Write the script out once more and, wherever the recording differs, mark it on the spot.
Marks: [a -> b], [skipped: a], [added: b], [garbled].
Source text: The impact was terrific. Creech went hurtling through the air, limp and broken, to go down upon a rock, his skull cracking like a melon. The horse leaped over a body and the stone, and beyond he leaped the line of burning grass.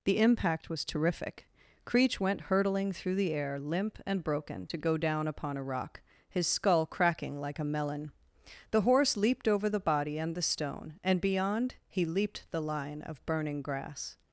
The impact was terrific. Creech went hurtling through the air, limp and broken, to go down upon a rock, his skull cracking like a melon. The horse leaped over [a -> the] body and the stone, and beyond he leaped the line of burning grass.